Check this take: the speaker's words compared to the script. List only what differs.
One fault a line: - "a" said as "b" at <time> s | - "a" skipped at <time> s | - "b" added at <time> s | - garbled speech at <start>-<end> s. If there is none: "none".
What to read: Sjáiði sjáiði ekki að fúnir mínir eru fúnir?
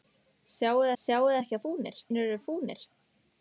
none